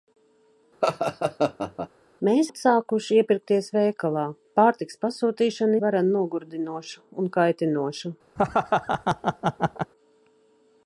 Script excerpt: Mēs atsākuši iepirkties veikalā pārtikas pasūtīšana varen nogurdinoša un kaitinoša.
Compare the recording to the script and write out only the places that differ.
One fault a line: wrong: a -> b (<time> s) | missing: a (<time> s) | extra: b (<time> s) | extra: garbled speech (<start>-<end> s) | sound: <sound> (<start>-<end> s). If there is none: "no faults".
sound: laugh (0.8-1.9 s)
sound: laugh (8.4-9.9 s)